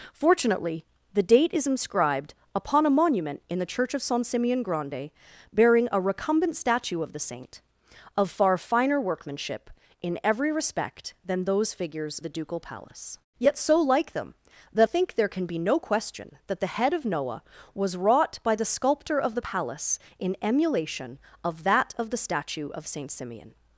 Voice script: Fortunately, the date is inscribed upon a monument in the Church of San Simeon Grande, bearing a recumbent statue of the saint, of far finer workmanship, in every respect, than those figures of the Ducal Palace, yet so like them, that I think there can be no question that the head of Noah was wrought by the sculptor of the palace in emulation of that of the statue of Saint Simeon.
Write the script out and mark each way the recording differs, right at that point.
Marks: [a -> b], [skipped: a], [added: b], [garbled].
Fortunately, the date is inscribed upon a monument in the Church of San Simeon Grande, bearing a recumbent statue of the saint, of far finer workmanship, in every respect, than those figures [skipped: of] the Ducal Palace, yet so like them, that [skipped: I] think there can be no question that the head of Noah was wrought by the sculptor of the palace in emulation of that of the statue of Saint Simeon.